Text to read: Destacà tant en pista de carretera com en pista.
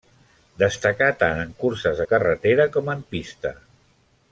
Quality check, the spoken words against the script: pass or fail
fail